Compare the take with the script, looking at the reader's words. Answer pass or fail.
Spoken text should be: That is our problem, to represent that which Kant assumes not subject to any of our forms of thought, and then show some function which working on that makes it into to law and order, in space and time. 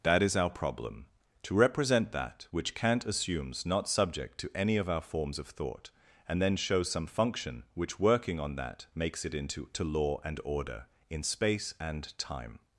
pass